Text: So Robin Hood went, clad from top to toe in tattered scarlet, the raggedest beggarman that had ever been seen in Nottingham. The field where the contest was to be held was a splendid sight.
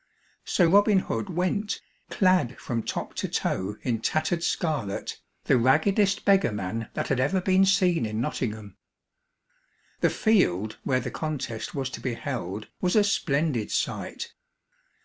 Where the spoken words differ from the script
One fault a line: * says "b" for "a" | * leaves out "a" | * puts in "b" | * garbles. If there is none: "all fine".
all fine